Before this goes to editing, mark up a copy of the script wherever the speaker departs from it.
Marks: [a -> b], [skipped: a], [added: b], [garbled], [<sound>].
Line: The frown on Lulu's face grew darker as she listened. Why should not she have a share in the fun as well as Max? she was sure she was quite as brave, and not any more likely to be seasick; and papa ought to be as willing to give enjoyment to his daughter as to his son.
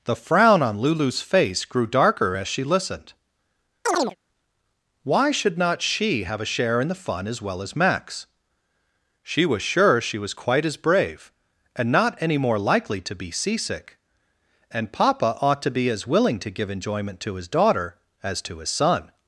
The frown on Lulu's face grew darker as she listened. [chirp] Why should not she have a share in the fun as well as Max? she was sure she was quite as brave, and not any more likely to be seasick; and papa ought to be as willing to give enjoyment to his daughter as to his son.